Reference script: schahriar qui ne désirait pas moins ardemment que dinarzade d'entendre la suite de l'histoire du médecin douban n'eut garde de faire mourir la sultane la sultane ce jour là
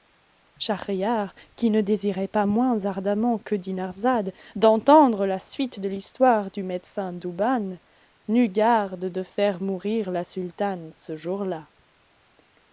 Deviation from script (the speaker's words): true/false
true